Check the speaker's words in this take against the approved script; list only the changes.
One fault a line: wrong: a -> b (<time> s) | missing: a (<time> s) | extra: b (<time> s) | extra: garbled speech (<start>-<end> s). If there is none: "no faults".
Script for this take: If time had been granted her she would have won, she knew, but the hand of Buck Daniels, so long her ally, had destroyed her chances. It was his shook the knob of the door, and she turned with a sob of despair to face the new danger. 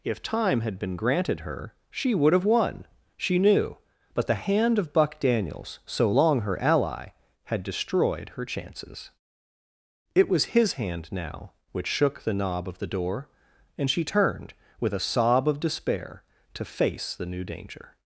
extra: hand now which (10.7 s)